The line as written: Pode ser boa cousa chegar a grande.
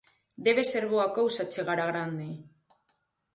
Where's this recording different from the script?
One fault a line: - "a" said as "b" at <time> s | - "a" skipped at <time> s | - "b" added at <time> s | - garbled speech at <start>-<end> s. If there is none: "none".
- "Pode" said as "Debe" at 0.5 s